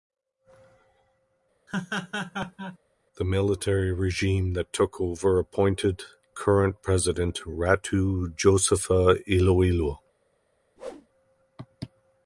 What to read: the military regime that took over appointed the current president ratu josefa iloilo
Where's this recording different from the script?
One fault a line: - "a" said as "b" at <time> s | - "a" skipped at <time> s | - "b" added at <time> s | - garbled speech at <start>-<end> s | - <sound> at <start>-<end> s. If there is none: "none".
- laugh at 1.7-2.8 s
- "the" skipped at 6.0 s
- whoosh at 10.8-11.1 s